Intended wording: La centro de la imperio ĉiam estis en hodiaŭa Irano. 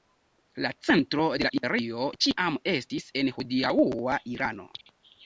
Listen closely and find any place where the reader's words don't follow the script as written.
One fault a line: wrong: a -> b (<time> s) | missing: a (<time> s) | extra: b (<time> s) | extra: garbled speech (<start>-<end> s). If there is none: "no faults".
no faults